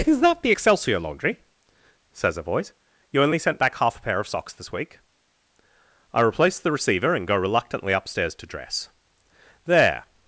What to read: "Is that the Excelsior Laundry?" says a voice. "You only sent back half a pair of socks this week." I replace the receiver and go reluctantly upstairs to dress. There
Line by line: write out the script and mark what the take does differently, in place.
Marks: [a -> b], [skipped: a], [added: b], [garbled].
"Is that the Excelsior Laundry?" says a voice. "You only sent back half a pair of socks this week." I replace the receiver and go reluctantly upstairs to dress. There